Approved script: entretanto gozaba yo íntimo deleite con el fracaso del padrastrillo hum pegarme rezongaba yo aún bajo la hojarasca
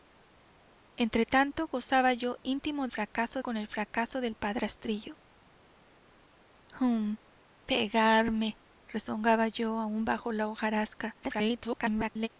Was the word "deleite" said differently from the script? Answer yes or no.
yes